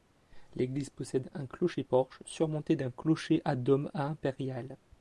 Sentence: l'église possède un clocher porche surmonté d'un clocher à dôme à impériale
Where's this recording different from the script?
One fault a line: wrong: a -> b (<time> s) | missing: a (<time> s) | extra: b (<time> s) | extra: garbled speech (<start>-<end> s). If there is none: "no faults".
no faults